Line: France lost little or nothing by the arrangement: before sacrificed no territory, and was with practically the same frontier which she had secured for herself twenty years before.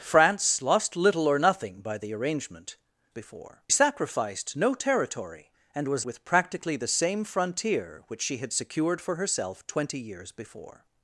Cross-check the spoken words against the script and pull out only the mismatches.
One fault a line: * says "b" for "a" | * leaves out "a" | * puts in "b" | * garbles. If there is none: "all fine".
all fine